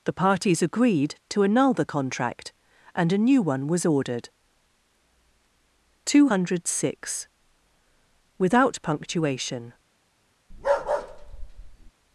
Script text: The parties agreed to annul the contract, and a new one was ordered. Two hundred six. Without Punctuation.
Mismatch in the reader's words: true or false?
false